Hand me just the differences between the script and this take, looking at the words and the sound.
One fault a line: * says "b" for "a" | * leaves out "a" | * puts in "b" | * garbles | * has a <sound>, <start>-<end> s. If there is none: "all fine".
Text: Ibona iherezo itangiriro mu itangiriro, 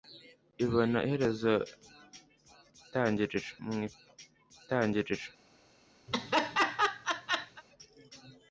* has a laugh, 6.1-7.6 s